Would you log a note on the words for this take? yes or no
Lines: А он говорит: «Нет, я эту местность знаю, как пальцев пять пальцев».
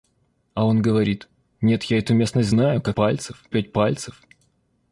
no